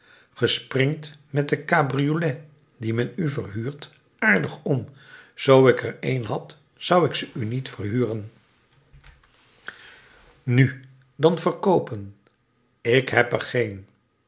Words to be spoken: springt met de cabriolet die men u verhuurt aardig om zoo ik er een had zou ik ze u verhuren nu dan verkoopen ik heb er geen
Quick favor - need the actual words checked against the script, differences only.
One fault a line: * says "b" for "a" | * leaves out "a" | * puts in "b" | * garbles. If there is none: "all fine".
* puts in "niet"